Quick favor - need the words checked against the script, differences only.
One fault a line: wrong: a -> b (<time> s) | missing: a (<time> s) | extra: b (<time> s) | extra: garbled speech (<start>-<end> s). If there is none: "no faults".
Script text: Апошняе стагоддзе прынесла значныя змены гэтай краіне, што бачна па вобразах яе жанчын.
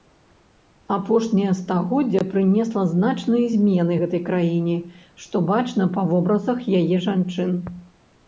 no faults